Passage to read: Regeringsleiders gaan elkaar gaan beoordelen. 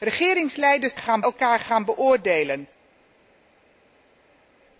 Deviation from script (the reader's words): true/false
false